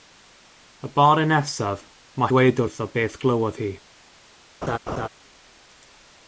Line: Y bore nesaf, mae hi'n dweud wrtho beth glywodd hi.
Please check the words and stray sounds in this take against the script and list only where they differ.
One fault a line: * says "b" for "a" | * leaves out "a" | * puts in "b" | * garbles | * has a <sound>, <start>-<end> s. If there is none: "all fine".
* leaves out "hi'n"
* has a laugh, 4.6-5.1 s